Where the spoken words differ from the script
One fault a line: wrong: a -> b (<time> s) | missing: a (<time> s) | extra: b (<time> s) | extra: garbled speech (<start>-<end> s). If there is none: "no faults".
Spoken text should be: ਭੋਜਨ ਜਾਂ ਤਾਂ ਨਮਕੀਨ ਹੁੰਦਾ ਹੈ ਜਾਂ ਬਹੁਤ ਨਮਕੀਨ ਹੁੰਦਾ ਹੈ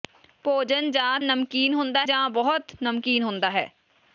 missing: ਤਾਂ (1.2 s)
missing: ਹੈ (2.1 s)